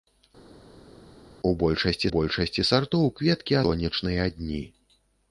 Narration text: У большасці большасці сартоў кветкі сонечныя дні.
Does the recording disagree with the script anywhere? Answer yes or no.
no